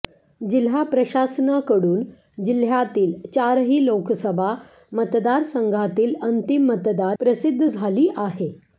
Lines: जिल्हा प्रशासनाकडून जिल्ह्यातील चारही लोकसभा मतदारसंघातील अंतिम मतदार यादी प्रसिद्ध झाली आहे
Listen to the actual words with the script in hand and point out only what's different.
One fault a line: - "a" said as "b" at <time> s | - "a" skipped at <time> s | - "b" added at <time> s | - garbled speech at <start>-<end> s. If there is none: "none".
- "यादी" skipped at 7.2 s